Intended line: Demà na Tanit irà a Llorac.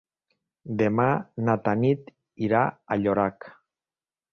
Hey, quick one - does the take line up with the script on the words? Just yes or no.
yes